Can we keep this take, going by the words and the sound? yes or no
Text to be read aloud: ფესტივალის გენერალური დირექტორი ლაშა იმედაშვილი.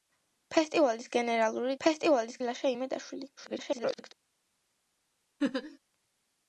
no